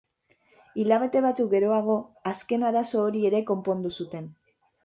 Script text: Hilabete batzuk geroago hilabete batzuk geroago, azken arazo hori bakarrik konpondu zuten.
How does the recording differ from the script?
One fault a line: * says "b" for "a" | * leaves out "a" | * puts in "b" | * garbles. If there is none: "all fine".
* leaves out "hilabete batzuk geroago"
* says "ere" for "bakarrik"